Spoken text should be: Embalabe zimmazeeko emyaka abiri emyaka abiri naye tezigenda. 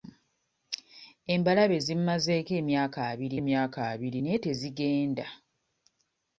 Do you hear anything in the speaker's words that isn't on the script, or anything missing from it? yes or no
no